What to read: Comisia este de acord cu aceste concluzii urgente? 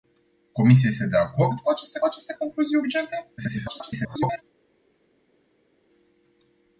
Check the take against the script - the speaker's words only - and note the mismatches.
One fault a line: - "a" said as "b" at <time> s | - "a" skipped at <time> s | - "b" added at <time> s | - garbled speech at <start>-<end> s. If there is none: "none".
- "aceste" added at 2.0 s
- garbled speech at 3.4-4.4 s